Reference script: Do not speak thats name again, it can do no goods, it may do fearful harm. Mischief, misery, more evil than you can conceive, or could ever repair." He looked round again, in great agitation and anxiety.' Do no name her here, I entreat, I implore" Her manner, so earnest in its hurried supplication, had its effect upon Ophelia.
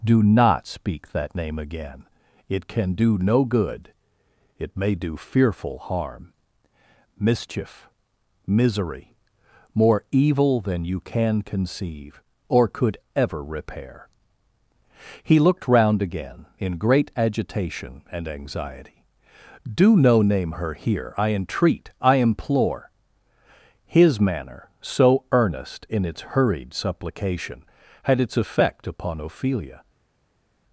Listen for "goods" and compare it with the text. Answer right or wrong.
wrong